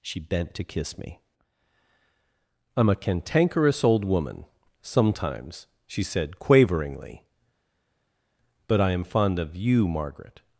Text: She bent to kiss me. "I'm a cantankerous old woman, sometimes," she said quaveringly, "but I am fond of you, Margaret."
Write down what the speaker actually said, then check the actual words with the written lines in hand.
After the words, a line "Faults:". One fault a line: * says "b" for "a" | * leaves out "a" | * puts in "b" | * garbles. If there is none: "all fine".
She bent to kiss me. "I'm a cantankerous old woman, sometimes," she said quaveringly, "but I am fond of you, Margaret."
Faults:
all fine